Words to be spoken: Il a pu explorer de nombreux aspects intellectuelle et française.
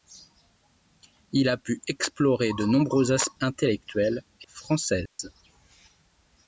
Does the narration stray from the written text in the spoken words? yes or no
no